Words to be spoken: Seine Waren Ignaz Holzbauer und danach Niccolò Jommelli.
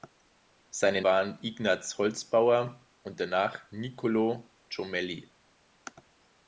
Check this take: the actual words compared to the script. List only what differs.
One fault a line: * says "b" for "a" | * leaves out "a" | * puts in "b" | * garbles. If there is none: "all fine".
all fine